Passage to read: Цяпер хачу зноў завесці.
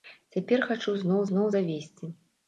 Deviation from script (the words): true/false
true